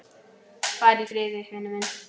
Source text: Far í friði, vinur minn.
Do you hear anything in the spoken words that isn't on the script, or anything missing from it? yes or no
no